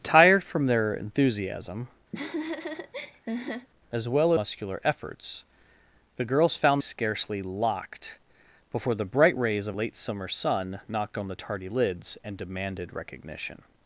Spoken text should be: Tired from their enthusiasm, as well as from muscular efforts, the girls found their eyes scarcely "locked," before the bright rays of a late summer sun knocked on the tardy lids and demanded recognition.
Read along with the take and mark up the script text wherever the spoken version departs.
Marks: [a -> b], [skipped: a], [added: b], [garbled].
Tired from their enthusiasm, as well [skipped: as from] muscular efforts, the girls found [skipped: their eyes] scarcely "locked," before the bright rays of [skipped: a] late summer sun knocked on the tardy lids and demanded recognition.